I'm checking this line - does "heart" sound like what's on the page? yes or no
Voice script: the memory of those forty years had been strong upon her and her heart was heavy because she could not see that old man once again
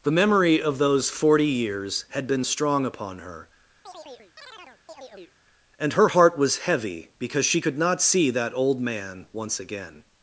yes